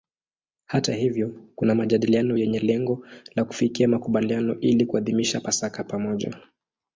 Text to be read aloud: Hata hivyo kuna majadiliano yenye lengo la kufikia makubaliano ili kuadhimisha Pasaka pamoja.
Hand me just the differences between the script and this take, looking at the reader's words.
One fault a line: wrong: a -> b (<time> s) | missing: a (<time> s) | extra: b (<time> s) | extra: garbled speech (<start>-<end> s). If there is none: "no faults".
no faults